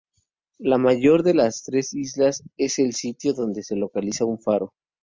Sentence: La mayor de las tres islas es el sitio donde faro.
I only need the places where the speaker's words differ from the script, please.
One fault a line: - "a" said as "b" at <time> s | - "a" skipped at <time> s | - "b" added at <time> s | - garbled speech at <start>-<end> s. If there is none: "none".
- "se localiza un" added at 3.6 s